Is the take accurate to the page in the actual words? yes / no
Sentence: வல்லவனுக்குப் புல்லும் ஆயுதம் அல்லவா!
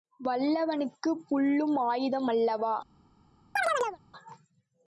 yes